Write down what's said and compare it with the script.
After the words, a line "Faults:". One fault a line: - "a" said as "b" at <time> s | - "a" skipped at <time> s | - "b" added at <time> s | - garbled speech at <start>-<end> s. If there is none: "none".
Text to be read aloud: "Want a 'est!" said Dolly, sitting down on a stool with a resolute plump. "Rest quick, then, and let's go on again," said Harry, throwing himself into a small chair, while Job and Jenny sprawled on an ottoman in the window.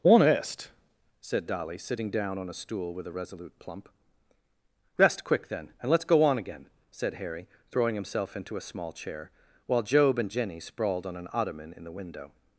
"Honest!" said Dolly, sitting down on a stool with a resolute plump. "Rest quick, then, and let's go on again," said Harry, throwing himself into a small chair, while Job and Jenny sprawled on an ottoman in the window.
Faults:
- "Want a est" said as "Honest" at 0.0 s